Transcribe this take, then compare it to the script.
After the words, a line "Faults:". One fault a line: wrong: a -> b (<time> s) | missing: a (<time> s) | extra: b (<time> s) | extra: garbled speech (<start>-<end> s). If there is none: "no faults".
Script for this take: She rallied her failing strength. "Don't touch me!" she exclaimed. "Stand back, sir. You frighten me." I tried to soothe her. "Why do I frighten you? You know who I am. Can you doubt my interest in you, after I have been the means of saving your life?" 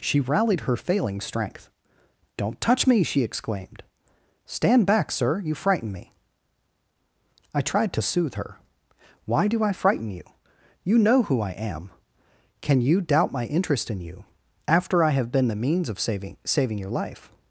She rallied her failing strength. "Don't touch me!" she exclaimed. "Stand back, sir. You frighten me." I tried to soothe her. "Why do I frighten you? You know who I am. Can you doubt my interest in you, after I have been the means of saving saving your life?"
Faults:
extra: saving (16.4 s)